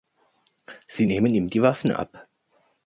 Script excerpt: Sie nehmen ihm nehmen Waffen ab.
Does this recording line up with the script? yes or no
no